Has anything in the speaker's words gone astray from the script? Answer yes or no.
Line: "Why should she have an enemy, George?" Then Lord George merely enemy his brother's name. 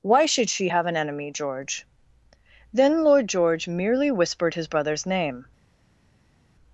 yes